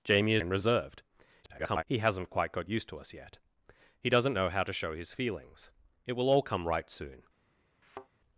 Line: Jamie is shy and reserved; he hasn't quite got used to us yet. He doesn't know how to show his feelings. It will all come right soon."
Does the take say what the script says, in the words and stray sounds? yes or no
no